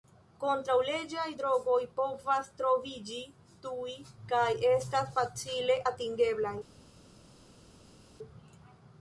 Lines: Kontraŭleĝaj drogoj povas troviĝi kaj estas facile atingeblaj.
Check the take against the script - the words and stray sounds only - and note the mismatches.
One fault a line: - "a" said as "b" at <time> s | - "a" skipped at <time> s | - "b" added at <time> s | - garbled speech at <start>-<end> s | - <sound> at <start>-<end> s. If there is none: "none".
- "tuj" added at 3.6 s